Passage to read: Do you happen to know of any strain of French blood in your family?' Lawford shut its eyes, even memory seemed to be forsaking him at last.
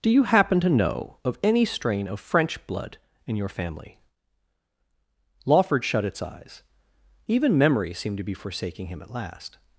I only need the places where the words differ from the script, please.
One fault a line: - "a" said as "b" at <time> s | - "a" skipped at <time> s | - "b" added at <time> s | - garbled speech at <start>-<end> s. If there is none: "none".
none